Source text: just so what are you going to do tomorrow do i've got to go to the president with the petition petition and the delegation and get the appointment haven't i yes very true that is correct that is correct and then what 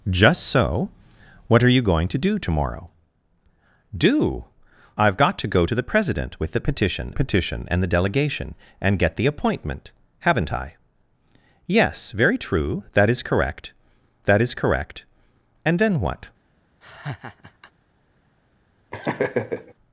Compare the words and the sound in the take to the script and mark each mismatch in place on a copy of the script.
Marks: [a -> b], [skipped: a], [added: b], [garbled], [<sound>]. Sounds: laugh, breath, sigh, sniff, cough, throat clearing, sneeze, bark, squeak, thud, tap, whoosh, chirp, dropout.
just so what are you going to do tomorrow do i've got to go to the president with the petition petition and the delegation and get the appointment haven't i yes very true that is correct that is correct and then what [laugh] [laugh]